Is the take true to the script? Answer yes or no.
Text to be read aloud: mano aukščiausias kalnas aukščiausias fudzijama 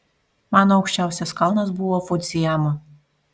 no